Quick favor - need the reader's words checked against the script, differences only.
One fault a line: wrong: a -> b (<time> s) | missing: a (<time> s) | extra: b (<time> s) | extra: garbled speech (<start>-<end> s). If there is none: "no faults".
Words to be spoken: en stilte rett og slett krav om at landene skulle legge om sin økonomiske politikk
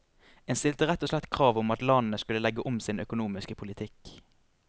no faults